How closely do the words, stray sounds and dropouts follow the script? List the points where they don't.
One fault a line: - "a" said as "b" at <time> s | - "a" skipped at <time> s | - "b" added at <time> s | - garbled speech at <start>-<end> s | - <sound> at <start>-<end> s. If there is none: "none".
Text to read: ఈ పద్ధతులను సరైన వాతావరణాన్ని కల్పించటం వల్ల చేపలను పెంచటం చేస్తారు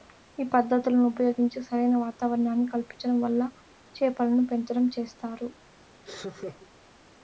- "ఉపయోగించి" added at 1.1 s
- laugh at 6.0-6.7 s